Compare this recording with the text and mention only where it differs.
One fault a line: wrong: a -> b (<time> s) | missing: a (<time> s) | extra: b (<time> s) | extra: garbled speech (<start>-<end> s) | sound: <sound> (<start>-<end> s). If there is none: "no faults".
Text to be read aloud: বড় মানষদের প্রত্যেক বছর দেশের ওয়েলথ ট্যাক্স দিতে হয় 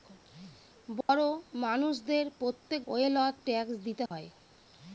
sound: dropout (1.0-1.1 s)
missing: বছর দেশের (2.8 s)
sound: dropout (4.1-4.1 s)